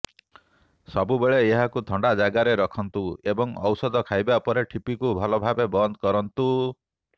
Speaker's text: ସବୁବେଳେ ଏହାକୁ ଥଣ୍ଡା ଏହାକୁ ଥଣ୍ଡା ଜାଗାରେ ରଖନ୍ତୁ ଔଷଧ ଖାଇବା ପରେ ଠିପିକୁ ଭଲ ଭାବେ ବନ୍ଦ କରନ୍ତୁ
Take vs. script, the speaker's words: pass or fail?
fail